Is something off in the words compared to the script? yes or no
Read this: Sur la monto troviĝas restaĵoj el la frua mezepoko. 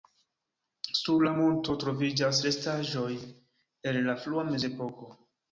no